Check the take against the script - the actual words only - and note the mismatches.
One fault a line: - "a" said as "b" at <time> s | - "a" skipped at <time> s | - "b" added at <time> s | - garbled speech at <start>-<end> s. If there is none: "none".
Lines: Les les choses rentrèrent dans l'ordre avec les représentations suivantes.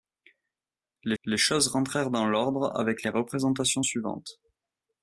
none